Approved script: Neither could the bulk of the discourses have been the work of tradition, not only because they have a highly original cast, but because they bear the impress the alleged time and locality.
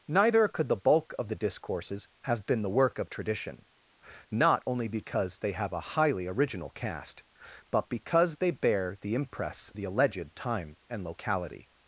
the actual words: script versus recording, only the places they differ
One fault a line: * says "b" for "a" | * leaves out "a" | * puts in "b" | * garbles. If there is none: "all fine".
all fine